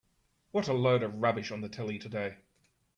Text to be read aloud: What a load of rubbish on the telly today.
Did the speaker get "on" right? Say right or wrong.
right